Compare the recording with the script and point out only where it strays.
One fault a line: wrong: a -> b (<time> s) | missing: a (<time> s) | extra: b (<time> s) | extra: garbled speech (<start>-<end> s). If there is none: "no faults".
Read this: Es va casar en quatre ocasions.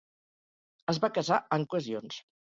missing: quatre (1.7 s)